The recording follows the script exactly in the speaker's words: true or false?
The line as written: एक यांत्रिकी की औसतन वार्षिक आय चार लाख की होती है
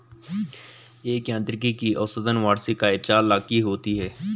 true